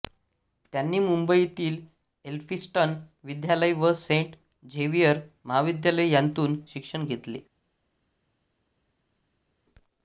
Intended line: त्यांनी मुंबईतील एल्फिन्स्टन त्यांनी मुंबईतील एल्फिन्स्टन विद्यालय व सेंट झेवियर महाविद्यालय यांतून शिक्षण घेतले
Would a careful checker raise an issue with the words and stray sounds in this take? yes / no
yes